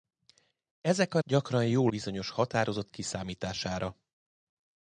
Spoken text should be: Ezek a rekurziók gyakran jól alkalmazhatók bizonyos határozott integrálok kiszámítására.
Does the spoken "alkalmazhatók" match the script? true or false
false